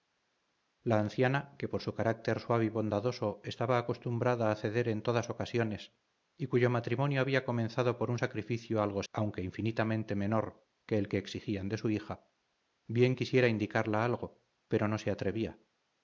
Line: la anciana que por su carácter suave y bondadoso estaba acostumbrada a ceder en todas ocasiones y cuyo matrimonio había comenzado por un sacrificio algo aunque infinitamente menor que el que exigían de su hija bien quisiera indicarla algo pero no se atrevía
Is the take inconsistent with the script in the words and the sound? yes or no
no